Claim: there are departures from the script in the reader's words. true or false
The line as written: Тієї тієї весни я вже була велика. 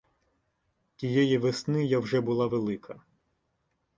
true